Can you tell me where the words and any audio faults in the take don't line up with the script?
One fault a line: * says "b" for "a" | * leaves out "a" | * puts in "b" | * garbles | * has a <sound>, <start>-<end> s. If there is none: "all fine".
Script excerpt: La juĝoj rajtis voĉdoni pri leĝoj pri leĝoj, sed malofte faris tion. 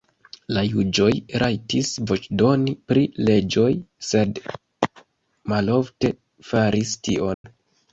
* leaves out "pri leĝoj"
* has a dropout, 7.3-7.4 s